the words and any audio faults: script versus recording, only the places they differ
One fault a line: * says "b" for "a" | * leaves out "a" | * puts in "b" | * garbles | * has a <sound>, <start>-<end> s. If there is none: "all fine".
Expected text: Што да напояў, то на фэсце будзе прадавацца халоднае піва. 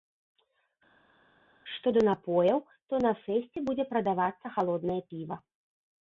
all fine